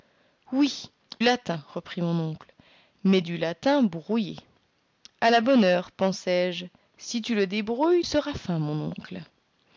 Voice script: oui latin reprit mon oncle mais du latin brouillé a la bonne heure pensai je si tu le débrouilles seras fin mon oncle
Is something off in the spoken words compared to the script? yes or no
no